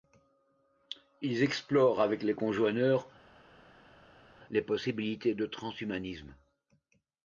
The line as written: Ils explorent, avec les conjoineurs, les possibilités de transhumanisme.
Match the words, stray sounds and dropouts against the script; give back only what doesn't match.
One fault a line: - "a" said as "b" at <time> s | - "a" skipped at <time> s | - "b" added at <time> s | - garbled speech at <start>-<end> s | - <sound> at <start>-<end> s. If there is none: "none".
none